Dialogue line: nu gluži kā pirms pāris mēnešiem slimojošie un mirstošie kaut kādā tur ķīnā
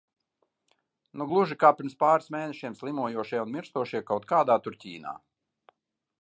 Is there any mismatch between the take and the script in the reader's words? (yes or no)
no